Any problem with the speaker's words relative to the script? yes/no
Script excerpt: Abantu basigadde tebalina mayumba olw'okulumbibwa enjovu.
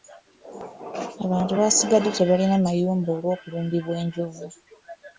no